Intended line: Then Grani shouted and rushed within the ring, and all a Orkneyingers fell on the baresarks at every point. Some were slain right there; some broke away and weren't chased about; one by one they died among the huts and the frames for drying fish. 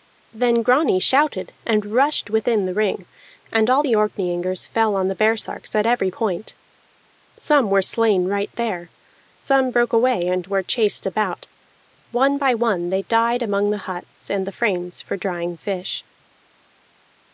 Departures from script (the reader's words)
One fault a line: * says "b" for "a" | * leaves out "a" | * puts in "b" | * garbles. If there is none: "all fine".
* says "the" for "a"
* says "were" for "weren't"